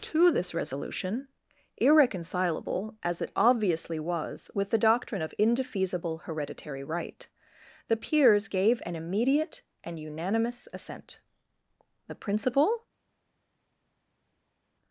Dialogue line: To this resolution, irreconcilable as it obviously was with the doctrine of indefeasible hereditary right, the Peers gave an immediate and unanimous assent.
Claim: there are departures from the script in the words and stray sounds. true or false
true